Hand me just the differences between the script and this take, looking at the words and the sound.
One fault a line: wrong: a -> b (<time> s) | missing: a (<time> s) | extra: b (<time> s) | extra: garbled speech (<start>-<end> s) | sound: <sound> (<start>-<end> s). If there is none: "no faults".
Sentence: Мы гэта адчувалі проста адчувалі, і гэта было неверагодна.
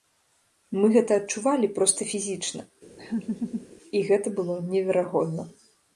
wrong: адчувалі -> фізічна (2.1 s)
sound: laugh (3.0-3.7 s)